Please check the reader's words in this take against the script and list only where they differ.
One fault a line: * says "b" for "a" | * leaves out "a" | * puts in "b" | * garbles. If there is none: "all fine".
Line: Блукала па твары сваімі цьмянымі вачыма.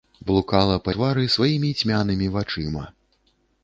all fine